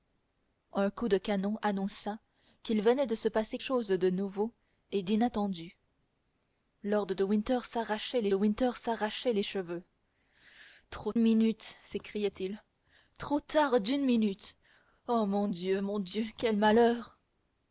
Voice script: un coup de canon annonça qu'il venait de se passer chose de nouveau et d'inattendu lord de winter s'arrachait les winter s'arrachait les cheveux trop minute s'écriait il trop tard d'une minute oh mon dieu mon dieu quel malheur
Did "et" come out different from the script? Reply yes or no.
no